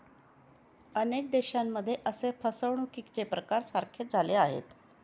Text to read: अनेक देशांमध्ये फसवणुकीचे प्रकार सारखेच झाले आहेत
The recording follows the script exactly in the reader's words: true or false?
false